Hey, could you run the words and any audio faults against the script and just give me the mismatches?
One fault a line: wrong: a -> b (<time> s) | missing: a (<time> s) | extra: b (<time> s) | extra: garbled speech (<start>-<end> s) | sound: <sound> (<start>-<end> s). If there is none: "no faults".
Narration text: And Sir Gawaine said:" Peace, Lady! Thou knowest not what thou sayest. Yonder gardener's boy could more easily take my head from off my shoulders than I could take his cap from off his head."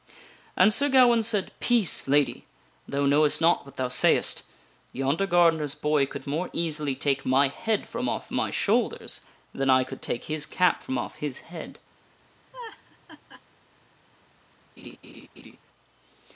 sound: laugh (12.5-13.4 s)
sound: laugh (14.8-15.6 s)